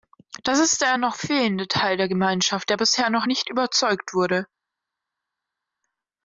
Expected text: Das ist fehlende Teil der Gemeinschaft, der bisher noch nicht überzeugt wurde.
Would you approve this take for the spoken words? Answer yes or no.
no